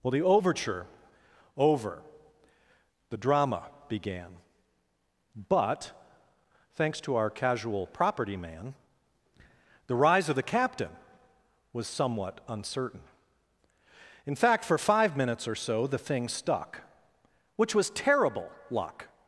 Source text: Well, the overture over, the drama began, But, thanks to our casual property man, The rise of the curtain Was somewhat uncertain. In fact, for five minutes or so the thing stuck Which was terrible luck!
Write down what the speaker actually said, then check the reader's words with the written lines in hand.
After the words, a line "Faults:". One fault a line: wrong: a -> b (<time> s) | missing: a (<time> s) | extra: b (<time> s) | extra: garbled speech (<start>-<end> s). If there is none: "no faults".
Well, the overture over, the drama began, But, thanks to our casual property man, The rise of the captain Was somewhat uncertain. In fact, for five minutes or so the thing stuck Which was terrible luck!
Faults:
wrong: curtain -> captain (10.4 s)